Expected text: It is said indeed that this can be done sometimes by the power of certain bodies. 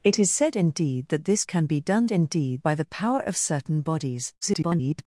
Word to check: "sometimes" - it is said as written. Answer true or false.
false